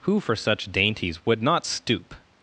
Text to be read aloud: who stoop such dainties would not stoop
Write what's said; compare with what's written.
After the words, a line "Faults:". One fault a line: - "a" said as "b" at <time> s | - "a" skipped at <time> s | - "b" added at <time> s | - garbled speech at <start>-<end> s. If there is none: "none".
who for such dainties would not stoop
Faults:
- "stoop" said as "for" at 0.2 s